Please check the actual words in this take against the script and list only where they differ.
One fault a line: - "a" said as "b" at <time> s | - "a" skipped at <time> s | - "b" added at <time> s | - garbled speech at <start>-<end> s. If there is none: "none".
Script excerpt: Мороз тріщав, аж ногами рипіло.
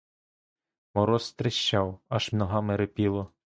none